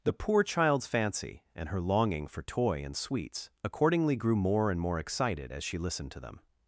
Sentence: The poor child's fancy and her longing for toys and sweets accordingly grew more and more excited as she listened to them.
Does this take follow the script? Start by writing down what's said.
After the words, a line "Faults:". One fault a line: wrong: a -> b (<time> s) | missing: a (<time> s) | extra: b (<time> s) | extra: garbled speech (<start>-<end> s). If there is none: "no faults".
The poor child's fancy and her longing for toy and sweets accordingly grew more and more excited as she listened to them.
Faults:
wrong: toys -> toy (2.4 s)